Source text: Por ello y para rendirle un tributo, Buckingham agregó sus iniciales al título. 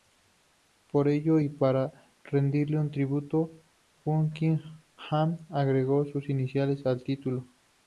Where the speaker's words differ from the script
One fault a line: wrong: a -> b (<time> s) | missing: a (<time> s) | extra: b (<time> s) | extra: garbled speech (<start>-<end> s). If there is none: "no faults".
no faults